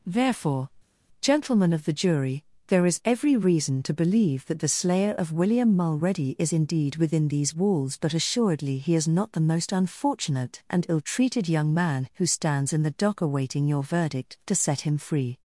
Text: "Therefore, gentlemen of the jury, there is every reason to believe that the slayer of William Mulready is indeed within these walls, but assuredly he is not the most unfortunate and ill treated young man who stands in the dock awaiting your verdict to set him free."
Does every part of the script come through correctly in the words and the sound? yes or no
yes